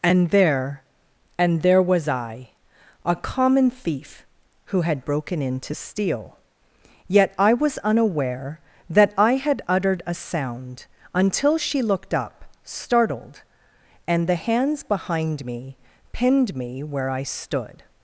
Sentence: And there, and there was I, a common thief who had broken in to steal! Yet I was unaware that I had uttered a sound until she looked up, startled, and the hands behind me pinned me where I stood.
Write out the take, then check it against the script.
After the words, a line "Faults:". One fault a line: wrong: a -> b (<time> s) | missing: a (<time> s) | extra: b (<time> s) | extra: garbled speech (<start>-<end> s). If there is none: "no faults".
And there, and there was I, a common thief who had broken in to steal! Yet I was unaware that I had uttered a sound until she looked up, startled, and the hands behind me pinned me where I stood.
Faults:
no faults